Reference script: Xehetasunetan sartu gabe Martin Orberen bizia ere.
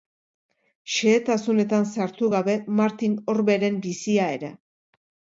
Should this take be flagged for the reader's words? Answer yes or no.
no